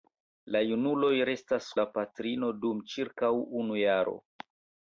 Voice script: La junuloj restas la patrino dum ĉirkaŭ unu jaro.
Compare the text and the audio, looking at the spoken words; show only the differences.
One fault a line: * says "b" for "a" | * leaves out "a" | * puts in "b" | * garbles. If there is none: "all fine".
all fine